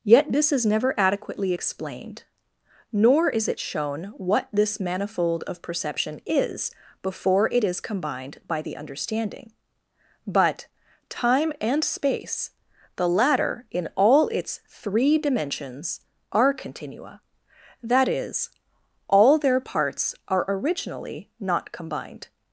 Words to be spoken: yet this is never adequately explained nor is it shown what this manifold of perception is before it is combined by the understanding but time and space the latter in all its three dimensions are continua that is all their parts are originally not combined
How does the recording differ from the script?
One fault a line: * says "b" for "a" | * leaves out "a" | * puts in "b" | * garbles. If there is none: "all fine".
all fine